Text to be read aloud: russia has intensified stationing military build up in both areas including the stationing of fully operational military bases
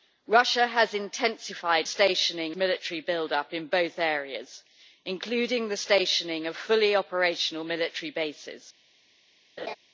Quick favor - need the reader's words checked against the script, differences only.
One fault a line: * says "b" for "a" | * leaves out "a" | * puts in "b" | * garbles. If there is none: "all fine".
all fine